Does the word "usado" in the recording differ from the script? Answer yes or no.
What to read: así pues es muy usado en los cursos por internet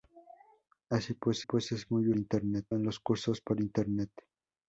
yes